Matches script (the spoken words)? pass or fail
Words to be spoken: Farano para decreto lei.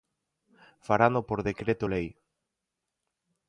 fail